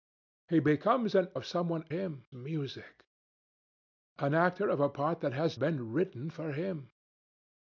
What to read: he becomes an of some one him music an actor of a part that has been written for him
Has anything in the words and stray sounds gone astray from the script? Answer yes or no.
no